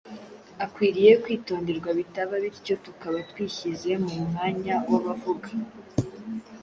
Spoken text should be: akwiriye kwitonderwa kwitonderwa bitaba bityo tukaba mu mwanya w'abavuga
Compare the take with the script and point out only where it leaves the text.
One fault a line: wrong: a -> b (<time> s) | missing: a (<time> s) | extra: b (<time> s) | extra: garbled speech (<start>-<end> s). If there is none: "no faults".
missing: kwitonderwa (1.9 s)
extra: twishyize (3.3 s)